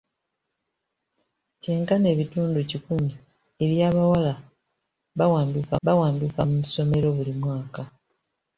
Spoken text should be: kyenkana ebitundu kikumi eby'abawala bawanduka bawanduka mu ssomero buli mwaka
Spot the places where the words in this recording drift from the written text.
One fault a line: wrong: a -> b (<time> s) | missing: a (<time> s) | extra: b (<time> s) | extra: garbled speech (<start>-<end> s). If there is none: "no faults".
no faults